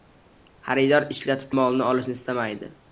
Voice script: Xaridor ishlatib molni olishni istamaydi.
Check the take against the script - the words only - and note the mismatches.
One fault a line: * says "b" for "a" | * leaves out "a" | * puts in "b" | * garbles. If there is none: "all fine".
all fine